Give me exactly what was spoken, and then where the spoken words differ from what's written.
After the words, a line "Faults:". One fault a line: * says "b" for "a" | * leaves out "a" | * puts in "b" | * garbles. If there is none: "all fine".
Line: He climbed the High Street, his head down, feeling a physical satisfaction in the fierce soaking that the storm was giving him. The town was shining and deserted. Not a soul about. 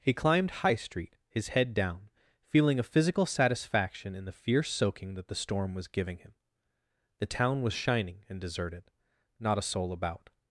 He climbed High Street, his head down, feeling a physical satisfaction in the fierce soaking that the storm was giving him. The town was shining and deserted. Not a soul about.
Faults:
* leaves out "the"